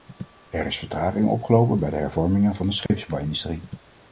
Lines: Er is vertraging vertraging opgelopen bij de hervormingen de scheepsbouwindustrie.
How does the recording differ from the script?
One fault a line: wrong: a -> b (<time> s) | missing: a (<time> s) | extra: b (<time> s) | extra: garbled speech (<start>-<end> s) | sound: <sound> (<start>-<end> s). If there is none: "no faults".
missing: vertraging (1.3 s)
extra: van (2.6 s)
sound: dropout (2.9-2.9 s)